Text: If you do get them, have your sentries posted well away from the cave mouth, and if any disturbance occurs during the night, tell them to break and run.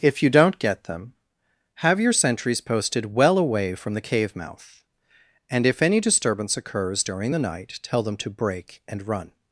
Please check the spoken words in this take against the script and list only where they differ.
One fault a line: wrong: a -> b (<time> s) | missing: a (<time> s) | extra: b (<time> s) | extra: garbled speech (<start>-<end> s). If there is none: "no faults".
wrong: do -> don't (0.3 s)